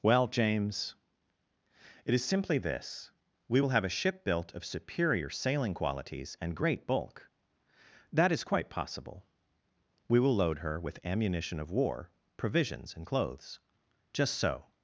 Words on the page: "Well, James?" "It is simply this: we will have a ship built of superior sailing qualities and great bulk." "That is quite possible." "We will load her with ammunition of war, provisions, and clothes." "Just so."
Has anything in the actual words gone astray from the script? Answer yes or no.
no